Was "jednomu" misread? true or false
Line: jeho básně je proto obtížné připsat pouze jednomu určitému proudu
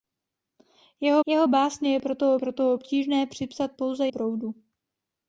true